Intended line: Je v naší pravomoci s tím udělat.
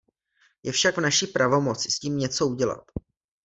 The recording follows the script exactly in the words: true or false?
false